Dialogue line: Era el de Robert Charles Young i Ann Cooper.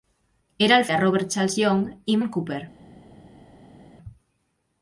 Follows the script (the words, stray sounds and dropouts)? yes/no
yes